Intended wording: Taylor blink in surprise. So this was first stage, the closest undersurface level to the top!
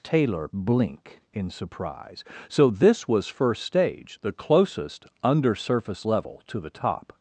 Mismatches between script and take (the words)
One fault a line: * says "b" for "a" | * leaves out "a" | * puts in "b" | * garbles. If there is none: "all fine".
all fine